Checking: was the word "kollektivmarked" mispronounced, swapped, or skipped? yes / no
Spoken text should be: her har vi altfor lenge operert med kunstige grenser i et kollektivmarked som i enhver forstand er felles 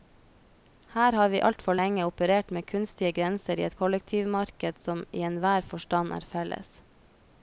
no